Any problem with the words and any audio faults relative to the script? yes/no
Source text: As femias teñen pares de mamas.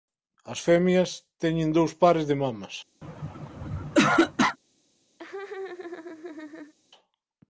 yes